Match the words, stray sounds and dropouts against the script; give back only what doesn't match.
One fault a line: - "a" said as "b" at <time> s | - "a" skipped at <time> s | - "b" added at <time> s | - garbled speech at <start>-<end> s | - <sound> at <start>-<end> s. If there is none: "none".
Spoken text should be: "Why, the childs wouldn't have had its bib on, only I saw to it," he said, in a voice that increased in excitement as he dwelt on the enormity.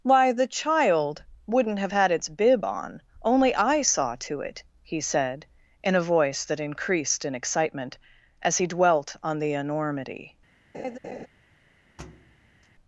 - "childs" said as "child" at 0.5 s
- laugh at 10.7-11.3 s
- thud at 12.0-12.7 s